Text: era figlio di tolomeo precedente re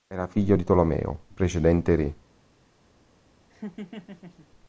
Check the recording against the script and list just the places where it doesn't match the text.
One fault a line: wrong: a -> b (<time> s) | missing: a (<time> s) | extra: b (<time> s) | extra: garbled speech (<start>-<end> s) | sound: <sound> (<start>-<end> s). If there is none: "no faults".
sound: laugh (3.5-4.5 s)